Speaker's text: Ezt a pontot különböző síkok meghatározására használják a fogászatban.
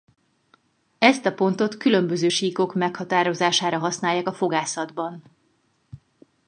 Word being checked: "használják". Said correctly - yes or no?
yes